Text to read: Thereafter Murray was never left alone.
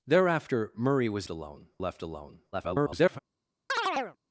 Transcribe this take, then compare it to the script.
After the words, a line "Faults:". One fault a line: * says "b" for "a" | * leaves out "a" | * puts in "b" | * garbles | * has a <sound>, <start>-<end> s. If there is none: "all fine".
Thereafter Murray was alone left alone. [garbled]
Faults:
* says "alone" for "never"
* garbles
* has a chirp, 3.7-4.2 s